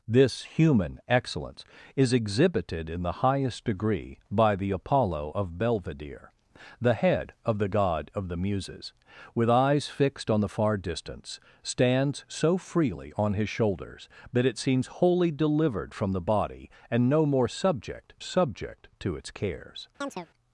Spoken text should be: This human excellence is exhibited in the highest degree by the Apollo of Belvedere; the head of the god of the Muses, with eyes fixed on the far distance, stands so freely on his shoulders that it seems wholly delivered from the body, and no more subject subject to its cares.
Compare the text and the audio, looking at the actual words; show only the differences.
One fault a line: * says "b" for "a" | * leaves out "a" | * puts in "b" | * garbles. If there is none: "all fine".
all fine